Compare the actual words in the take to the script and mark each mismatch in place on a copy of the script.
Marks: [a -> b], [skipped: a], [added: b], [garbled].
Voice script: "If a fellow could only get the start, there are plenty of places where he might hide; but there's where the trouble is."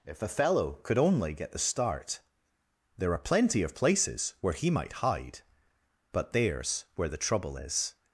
"If a fellow could only get the start, there are plenty of places where he might hide; but there's where the trouble is."